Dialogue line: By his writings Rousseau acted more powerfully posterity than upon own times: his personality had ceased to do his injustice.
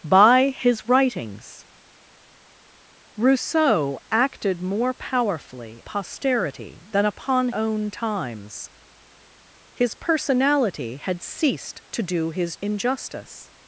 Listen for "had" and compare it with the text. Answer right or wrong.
right